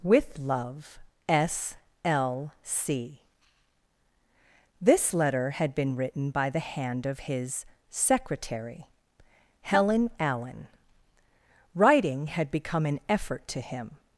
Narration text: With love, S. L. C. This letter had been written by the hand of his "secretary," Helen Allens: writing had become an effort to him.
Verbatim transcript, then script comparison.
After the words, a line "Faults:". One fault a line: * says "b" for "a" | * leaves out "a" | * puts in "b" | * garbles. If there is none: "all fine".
With love, S. L. C. This letter had been written by the hand of his "secretary," Helen Allen: writing had become an effort to him.
Faults:
* says "Allen" for "Allens"